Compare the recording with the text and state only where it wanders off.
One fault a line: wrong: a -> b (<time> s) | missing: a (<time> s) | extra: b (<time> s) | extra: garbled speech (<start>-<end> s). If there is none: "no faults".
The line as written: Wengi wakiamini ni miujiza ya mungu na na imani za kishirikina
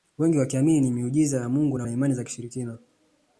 no faults